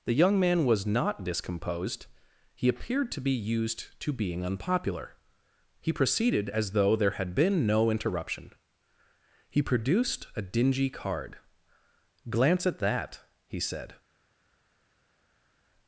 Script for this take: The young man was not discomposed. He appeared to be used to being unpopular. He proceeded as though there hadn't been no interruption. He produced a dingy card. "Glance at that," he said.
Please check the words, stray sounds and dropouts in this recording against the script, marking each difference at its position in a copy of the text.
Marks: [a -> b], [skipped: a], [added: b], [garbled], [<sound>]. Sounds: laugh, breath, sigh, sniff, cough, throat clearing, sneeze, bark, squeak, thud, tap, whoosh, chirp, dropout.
The young man was not discomposed. He appeared to be used to being unpopular. He proceeded as though there [hadn't -> had] been no interruption. He produced a dingy card. "Glance at that," he said.